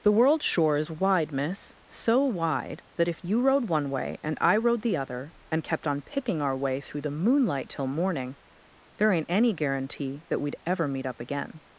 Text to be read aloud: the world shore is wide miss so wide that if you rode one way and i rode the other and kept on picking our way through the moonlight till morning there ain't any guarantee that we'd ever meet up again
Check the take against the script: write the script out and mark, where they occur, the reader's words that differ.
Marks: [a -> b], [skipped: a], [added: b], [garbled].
the world shore is wide miss so wide that if you rode one way and i rode the other and kept on picking our way through the moonlight till morning there ain't any guarantee that we'd ever meet up again